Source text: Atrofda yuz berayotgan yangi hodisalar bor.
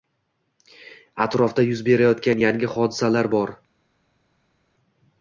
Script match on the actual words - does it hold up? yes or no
yes